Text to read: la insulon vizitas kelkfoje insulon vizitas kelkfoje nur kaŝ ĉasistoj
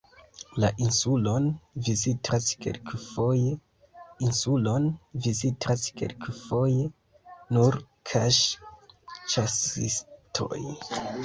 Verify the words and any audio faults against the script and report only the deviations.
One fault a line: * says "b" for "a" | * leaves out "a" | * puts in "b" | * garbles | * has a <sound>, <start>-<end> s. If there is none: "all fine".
all fine